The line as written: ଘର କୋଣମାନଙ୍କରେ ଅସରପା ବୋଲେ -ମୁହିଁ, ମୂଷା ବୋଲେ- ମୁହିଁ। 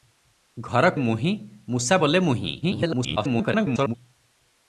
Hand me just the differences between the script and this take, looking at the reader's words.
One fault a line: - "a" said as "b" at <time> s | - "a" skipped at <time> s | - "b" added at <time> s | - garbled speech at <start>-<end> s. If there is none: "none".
- "କୋଣମାନଙ୍କରେ ଅସରପା ବୋଲେ" skipped at 0.9 s
- garbled speech at 2.6-3.9 s